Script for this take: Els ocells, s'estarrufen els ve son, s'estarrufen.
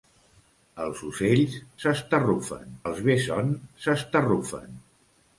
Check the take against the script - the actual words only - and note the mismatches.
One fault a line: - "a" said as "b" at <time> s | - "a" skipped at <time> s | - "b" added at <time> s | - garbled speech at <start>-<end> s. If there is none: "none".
none